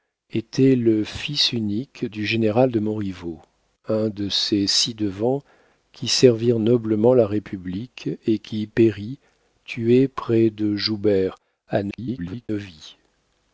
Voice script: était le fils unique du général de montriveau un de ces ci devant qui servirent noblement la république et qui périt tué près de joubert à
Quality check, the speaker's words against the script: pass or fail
fail